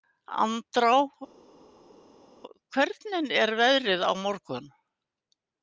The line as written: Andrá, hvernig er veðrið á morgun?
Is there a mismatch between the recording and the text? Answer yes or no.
no